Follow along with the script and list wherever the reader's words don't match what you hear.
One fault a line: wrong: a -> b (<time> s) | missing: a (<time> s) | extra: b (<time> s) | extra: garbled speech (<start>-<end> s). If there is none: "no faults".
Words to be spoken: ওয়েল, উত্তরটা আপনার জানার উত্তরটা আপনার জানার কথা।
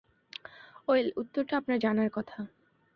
missing: উত্তরটা আপনার জানার (2.1 s)